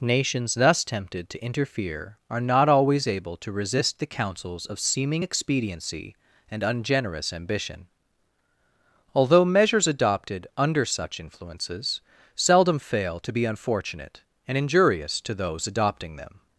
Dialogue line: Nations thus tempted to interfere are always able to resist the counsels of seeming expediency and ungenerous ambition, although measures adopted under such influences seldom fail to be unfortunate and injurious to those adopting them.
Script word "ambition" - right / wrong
right